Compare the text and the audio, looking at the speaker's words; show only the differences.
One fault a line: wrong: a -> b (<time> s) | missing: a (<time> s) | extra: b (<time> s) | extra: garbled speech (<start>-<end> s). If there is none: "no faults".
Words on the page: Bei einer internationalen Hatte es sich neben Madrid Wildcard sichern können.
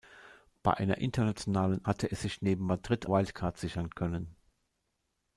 no faults